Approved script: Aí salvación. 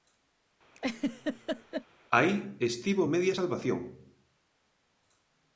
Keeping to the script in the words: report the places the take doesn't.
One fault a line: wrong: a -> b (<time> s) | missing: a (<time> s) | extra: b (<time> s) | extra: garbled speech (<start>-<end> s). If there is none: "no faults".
extra: estivo media (2.6 s)